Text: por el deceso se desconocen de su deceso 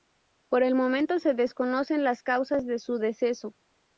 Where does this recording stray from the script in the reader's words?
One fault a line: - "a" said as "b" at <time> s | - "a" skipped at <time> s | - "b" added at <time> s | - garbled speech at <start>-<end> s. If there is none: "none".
- "deceso" said as "momento" at 0.7 s
- "las causas" added at 2.0 s